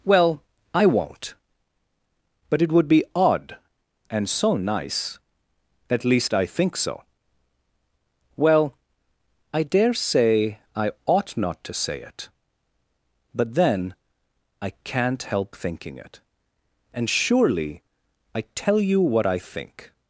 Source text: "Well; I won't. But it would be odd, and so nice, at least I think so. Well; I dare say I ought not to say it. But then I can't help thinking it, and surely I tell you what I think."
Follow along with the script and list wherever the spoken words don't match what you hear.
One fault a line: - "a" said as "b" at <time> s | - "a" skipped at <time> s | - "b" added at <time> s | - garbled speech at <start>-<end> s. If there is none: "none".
none